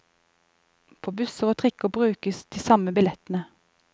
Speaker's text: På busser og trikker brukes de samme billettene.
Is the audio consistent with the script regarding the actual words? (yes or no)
yes